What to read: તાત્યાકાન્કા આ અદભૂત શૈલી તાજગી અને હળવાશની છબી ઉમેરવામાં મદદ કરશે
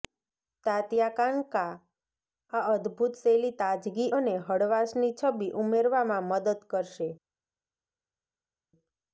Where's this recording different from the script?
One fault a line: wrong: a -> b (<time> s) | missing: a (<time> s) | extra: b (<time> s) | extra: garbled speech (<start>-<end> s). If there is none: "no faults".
no faults